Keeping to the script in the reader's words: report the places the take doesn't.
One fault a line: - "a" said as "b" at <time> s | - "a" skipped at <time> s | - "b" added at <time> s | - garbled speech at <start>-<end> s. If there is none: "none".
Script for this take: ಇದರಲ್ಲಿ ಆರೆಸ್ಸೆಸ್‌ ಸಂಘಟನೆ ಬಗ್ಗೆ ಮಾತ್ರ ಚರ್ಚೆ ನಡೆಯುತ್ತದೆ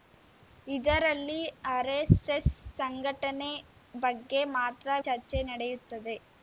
none